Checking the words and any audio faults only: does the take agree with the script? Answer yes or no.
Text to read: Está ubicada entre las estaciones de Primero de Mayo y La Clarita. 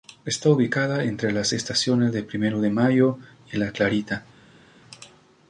yes